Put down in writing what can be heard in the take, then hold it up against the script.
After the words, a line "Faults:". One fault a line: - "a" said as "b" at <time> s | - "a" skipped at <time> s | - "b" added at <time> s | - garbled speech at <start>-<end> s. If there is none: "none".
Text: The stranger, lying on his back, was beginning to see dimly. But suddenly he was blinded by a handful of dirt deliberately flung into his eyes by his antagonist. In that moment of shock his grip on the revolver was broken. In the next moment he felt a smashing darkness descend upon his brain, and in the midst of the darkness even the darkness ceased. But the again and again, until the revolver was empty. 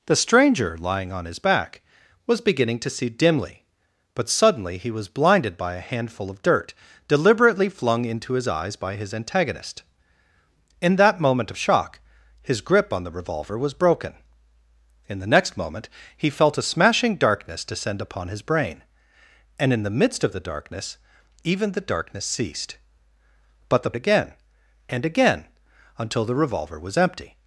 The stranger, lying on his back, was beginning to see dimly. But suddenly he was blinded by a handful of dirt deliberately flung into his eyes by his antagonist. In that moment of shock his grip on the revolver was broken. In the next moment he felt a smashing darkness descend upon his brain, and in the midst of the darkness even the darkness ceased. But the again and again, until the revolver was empty.
Faults:
none